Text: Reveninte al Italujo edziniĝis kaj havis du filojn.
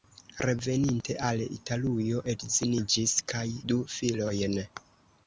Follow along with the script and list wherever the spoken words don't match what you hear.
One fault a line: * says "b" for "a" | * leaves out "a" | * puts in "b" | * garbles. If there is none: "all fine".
* leaves out "havis"